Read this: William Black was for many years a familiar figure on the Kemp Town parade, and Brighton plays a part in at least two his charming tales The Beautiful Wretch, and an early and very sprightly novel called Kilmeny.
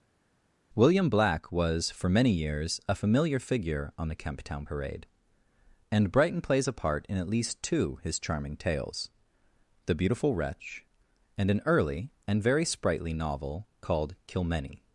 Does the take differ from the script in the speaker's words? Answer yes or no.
no